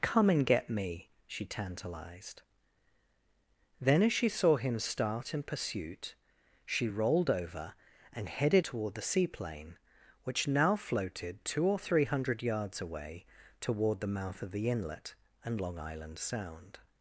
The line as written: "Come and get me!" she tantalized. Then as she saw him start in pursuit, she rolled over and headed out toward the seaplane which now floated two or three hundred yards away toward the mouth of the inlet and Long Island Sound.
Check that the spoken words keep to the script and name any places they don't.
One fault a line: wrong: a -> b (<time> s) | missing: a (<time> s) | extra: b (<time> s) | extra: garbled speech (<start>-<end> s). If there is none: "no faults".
missing: out (8.7 s)